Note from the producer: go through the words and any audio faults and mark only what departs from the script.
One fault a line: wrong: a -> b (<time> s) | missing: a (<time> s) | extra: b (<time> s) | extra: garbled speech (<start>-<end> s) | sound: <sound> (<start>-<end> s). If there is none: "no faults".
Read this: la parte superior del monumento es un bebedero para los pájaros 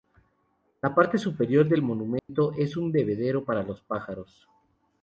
sound: dropout (2.2-2.3 s)